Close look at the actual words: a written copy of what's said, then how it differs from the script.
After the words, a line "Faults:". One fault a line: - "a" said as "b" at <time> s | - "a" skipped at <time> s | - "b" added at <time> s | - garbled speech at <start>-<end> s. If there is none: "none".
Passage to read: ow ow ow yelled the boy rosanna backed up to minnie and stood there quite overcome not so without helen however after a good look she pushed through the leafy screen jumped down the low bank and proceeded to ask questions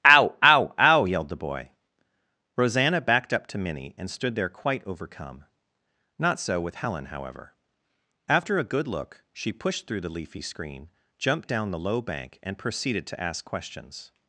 ow ow ow yelled the boy rosanna backed up to minnie and stood there quite overcome not so with helen however after a good look she pushed through the leafy screen jumped down the low bank and proceeded to ask questions
Faults:
- "without" said as "with" at 6.6 s